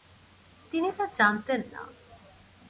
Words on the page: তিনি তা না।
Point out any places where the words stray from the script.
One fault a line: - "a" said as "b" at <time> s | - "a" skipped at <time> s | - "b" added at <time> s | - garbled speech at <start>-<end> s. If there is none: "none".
- "জানতেন" added at 1.2 s